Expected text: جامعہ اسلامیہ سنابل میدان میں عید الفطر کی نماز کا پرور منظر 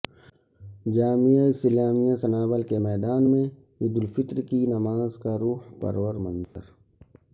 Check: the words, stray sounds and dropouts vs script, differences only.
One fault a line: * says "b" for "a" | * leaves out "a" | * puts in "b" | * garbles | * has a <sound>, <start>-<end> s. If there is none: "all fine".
* puts in "کے"
* puts in "روح"
* has a dropout, 6.4-6.6 s